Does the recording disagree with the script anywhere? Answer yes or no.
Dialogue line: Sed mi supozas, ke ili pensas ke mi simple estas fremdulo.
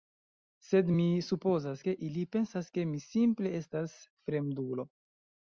no